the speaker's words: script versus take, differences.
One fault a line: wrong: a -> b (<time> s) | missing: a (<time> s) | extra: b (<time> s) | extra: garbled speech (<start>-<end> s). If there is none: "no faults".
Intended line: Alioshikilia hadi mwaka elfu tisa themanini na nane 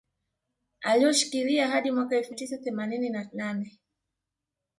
no faults